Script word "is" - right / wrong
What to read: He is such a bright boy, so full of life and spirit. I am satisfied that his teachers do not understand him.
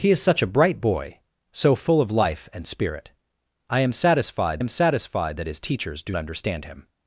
right